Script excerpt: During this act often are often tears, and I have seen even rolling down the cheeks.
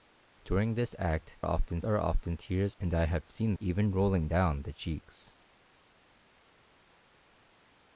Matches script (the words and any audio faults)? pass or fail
pass